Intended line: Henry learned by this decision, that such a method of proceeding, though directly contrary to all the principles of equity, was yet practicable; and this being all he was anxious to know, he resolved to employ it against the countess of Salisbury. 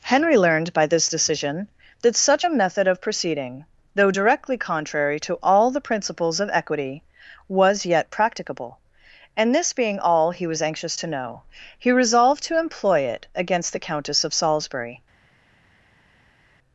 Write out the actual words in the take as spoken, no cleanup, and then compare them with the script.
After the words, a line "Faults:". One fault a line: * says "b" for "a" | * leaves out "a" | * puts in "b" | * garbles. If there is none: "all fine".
Henry learned by this decision, that such a method of proceeding, though directly contrary to all the principles of equity, was yet practicable; and this being all he was anxious to know, he resolved to employ it against the countess of Salisbury.
Faults:
all fine